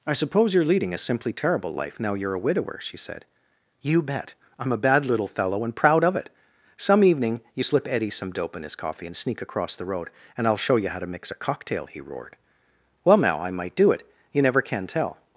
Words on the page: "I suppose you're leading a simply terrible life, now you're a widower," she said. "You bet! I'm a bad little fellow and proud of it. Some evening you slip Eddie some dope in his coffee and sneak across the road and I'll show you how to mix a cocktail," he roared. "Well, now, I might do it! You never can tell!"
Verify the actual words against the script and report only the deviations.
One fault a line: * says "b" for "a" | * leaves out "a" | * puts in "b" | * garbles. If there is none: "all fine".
all fine